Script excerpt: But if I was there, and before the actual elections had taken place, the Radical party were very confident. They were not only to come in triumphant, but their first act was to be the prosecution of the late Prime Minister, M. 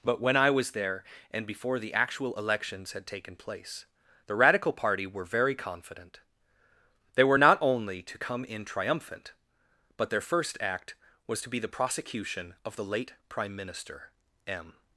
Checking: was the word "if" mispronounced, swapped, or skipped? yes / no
yes